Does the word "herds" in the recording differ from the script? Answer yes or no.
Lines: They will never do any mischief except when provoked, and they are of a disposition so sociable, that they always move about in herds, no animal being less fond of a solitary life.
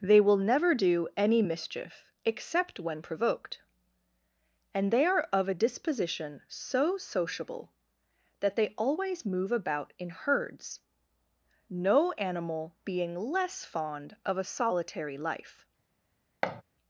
no